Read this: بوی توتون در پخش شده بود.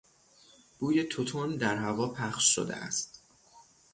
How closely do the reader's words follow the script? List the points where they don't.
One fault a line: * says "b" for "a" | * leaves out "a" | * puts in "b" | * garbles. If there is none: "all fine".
* puts in "هوا"
* says "است" for "بود"